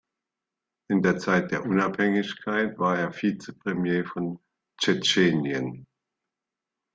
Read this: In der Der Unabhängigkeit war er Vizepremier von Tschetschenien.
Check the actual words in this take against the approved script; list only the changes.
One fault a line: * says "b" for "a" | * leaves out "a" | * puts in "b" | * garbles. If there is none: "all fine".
* puts in "Zeit"